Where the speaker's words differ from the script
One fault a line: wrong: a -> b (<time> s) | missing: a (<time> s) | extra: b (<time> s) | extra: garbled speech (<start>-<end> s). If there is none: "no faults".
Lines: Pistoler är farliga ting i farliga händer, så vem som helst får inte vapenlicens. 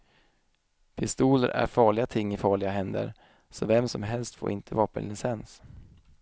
no faults